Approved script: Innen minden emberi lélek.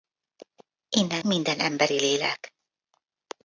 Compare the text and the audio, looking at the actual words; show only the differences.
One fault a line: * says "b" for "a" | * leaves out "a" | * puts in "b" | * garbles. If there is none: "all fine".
all fine